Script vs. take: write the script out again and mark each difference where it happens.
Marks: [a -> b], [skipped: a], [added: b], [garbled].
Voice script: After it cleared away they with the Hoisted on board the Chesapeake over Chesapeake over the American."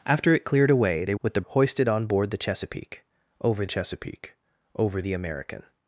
After it cleared away they with the Hoisted on board the Chesapeake over Chesapeake over the American."